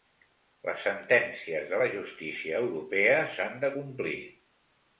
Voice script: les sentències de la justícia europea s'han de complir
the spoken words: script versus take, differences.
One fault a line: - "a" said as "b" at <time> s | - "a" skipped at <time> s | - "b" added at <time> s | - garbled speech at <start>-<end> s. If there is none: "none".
none